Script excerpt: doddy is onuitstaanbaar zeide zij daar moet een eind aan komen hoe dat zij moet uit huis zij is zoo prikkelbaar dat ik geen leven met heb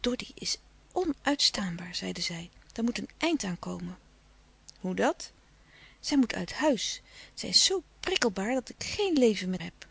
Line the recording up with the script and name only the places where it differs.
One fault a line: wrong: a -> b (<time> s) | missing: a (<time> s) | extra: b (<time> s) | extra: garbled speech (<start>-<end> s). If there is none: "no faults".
no faults